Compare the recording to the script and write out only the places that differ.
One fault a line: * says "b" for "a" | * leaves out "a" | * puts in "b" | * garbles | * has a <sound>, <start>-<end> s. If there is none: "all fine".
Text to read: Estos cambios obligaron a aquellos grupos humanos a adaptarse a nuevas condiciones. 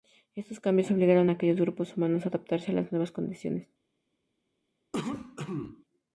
* puts in "las"
* has a cough, 4.9-5.8 s